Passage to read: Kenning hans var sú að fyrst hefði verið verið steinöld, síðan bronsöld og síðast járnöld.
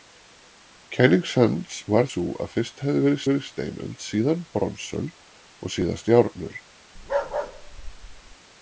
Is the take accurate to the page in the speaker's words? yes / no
yes